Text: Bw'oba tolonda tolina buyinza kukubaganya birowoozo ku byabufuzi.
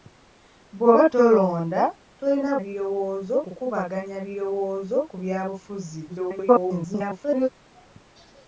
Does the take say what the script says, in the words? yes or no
no